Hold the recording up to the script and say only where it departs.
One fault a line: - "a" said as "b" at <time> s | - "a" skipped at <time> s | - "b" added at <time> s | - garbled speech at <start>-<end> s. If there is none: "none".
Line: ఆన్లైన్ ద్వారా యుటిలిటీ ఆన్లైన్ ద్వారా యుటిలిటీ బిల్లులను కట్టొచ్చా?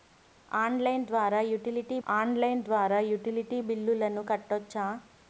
none